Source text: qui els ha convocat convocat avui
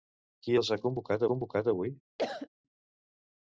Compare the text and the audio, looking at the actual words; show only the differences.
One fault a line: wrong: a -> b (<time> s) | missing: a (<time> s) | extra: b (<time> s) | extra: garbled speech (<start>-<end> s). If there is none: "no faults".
no faults